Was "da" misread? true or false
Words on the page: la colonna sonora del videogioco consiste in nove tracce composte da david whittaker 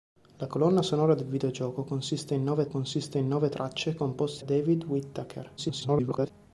true